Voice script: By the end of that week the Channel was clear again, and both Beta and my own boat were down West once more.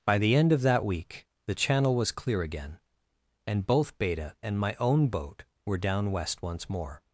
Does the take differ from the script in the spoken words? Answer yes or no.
no